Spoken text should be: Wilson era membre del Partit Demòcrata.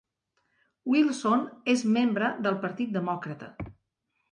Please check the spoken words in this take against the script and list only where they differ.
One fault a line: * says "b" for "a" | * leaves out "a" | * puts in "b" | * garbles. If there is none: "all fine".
* says "és" for "era"